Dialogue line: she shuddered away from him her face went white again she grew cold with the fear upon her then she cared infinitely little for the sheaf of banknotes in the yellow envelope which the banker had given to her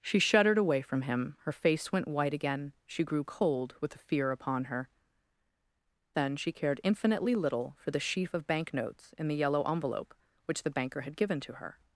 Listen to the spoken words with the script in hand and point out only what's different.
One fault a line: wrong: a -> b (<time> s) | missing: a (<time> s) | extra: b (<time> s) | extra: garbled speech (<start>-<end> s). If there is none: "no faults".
no faults